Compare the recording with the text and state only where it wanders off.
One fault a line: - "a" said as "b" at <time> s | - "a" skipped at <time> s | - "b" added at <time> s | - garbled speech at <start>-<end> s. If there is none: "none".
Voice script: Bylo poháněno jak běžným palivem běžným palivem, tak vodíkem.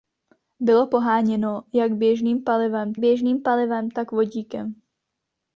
none